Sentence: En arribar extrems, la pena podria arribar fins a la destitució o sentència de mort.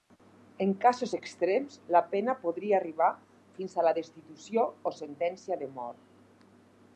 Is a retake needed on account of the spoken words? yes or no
yes